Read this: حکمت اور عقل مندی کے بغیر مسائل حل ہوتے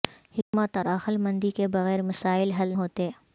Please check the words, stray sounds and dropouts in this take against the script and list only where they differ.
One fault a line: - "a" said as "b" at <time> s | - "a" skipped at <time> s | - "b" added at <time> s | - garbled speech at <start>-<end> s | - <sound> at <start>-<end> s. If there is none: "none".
- dropout at 0.4-0.5 s